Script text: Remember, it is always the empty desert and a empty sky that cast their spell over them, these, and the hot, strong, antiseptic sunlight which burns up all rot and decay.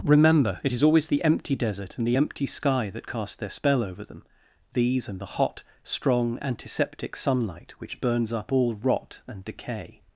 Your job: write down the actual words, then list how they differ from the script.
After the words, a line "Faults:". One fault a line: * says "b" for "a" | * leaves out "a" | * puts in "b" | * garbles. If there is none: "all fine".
Remember, it is always the empty desert and the empty sky that cast their spell over them, these, and the hot, strong, antiseptic sunlight which burns up all rot and decay.
Faults:
* says "the" for "a"